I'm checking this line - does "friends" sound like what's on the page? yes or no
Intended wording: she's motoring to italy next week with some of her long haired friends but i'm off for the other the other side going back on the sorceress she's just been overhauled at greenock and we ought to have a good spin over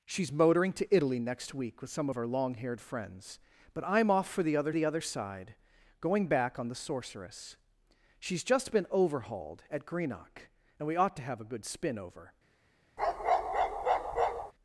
yes